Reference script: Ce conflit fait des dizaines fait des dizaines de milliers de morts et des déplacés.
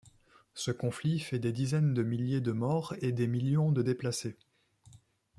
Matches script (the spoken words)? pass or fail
fail